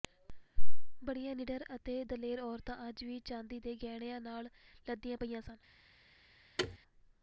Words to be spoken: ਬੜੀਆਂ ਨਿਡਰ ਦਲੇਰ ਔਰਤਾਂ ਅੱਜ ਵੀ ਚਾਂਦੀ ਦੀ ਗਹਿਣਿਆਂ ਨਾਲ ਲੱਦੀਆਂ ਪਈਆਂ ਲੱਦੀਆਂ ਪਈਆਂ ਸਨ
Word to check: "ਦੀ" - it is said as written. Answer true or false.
false